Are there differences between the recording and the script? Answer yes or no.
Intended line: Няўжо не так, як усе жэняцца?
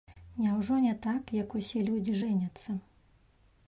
yes